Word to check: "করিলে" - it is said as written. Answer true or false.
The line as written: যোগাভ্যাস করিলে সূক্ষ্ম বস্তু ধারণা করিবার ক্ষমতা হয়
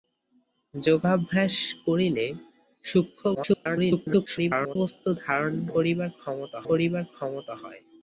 true